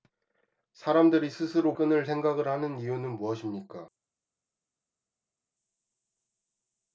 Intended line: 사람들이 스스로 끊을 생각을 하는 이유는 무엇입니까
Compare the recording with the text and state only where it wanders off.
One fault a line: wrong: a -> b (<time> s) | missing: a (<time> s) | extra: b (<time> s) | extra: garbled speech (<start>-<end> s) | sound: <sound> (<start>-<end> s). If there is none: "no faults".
no faults